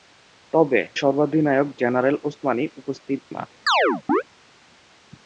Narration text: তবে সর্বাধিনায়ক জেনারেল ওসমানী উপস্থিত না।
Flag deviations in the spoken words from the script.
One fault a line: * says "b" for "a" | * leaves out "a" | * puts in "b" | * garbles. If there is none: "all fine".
all fine